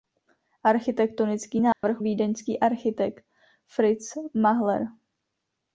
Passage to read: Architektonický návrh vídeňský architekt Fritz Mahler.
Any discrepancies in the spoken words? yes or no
no